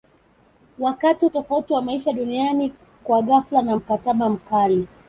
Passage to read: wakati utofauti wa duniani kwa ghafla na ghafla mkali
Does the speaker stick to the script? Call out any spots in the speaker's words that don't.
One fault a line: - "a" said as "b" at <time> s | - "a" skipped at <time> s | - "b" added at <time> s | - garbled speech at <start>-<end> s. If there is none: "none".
- "maisha" added at 1.8 s
- "ghafla" said as "mkataba" at 3.7 s